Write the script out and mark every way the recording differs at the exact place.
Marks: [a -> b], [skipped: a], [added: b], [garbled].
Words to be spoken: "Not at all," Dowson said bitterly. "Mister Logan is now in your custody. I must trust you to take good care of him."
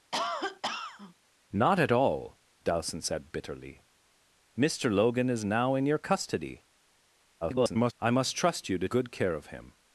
"Not at all," Dowson said bitterly. "Mister Logan is now in your custody. [garbled] I must trust you to [skipped: take] good care of him."